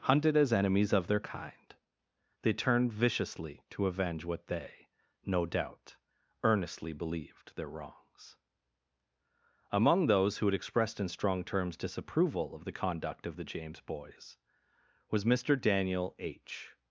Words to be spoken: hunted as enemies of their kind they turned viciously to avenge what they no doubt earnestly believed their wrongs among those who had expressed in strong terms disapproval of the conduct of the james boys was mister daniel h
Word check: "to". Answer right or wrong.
right